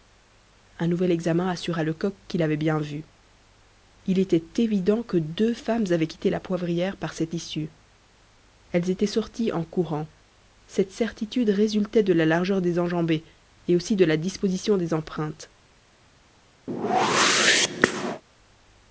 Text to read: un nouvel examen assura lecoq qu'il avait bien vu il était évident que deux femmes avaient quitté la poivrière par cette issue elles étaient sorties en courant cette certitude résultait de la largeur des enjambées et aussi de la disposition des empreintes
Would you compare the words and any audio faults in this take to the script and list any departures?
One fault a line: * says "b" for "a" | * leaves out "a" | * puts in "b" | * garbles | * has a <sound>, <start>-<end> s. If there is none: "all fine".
* has a whoosh, 16.7-18.2 s